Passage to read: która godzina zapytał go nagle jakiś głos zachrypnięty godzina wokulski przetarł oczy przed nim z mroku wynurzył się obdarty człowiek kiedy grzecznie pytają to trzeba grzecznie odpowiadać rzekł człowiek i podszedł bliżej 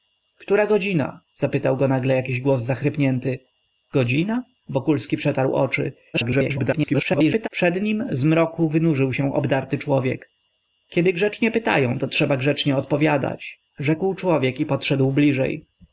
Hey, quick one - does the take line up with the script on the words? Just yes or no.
no